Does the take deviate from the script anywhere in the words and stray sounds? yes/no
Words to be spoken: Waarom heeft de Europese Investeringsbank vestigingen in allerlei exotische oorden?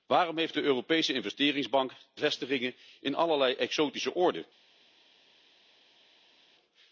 no